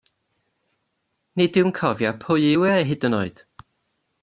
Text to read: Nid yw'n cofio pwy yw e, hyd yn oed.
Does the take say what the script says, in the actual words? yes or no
yes